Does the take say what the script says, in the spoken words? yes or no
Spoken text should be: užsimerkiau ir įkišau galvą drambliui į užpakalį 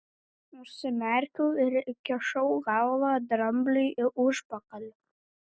yes